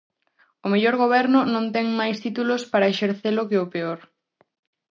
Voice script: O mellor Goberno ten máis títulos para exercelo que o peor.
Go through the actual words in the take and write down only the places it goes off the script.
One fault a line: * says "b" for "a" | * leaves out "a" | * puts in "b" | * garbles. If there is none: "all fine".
* puts in "non"